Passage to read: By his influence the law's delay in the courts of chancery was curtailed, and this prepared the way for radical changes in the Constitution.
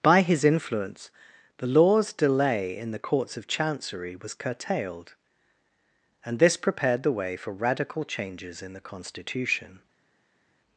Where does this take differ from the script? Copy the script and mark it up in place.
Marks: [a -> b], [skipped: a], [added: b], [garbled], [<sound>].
By his influence the law's delay in the courts of chancery was curtailed, and this prepared the way for radical changes in the Constitution.